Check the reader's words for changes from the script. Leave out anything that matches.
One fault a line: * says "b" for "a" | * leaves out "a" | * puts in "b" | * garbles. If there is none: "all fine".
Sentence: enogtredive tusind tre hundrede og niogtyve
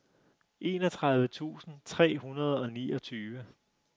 all fine